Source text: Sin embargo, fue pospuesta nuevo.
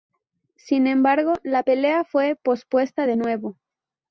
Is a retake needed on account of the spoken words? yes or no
yes